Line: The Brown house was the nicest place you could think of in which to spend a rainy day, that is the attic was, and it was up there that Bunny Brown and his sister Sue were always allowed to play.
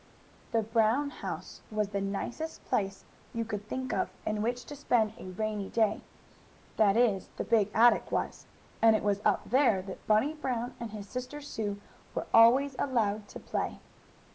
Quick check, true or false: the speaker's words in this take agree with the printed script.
false